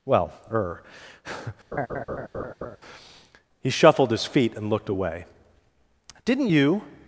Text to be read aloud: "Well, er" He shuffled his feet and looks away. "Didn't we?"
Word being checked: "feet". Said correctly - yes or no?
yes